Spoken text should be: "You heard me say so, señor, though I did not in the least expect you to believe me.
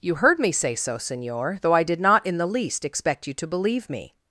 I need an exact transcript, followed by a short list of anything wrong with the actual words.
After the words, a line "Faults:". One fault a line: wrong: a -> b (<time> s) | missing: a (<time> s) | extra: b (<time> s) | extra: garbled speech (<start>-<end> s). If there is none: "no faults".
"You heard me say so, señor, though I did not in the least expect you to believe me.
Faults:
no faults